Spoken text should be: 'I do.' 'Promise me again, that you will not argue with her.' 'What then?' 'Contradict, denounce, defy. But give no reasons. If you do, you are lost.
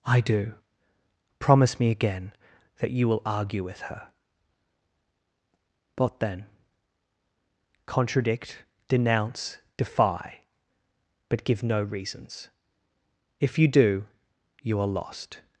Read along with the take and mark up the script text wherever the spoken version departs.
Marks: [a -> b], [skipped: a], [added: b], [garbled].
'I do.' 'Promise me again, that you will [skipped: not] argue with her.' 'What then?' 'Contradict, denounce, defy. But give no reasons. If you do, you are lost.